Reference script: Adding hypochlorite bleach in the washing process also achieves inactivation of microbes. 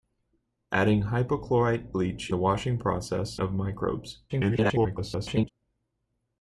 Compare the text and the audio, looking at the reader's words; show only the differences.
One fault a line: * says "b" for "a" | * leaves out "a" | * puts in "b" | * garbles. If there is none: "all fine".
* leaves out "in"
* leaves out "also achieves inactivation"
* garbles